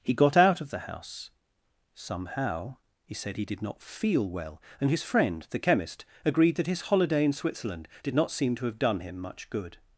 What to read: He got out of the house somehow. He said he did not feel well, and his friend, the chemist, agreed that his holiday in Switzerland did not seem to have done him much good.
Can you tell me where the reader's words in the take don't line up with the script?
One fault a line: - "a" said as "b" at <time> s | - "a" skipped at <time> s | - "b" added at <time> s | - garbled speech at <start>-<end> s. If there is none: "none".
none